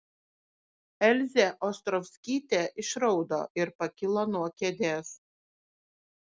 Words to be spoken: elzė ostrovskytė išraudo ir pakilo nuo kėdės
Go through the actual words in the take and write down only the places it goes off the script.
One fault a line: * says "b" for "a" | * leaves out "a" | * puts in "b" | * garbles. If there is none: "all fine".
all fine